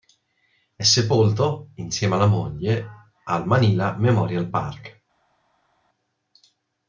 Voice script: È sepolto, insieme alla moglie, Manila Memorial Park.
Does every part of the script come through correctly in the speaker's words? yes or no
no